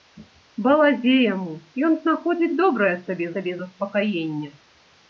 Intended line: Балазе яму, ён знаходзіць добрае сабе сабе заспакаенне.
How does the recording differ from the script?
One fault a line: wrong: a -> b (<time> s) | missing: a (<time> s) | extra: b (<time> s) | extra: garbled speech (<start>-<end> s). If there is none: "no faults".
no faults